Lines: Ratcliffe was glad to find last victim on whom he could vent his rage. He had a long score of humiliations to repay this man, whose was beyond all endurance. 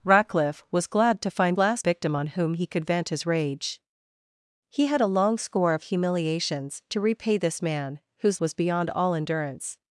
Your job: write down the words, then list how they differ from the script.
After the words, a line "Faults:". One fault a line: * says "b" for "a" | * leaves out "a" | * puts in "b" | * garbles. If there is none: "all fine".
Ratcliffe was glad to find last victim on whom he could vent his rage. He had a long score of humiliations to repay this man, whose was beyond all endurance.
Faults:
all fine